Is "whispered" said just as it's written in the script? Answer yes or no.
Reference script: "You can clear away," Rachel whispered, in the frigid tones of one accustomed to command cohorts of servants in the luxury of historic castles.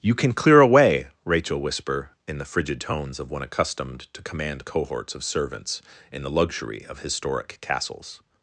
no